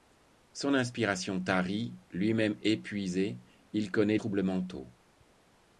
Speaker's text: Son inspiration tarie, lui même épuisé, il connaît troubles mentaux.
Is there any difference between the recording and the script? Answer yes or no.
no